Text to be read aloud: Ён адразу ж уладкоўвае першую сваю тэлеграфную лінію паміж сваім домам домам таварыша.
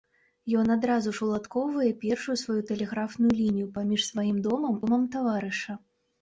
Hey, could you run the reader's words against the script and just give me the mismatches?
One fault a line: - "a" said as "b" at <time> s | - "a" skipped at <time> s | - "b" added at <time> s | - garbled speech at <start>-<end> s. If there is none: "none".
none